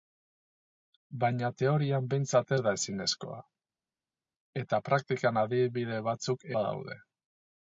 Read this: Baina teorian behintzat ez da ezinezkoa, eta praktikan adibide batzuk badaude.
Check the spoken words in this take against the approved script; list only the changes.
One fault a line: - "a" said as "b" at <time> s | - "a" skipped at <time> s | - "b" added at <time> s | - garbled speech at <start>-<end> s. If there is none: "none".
none